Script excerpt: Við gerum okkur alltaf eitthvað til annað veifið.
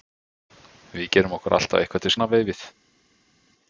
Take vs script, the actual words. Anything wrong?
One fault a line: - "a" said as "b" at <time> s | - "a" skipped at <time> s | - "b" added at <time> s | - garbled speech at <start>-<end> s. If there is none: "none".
none